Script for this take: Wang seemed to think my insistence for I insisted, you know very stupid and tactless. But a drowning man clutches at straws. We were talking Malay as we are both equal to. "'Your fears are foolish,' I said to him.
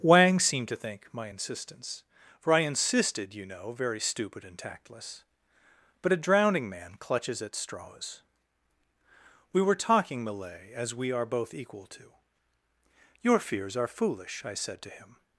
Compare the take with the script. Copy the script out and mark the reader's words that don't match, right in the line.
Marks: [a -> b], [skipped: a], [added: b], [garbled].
Wang seemed to think my insistence for I insisted, you know very stupid and tactless. But a drowning man clutches at straws. We were talking Malay as we are both equal to. "'Your fears are foolish,' I said to him.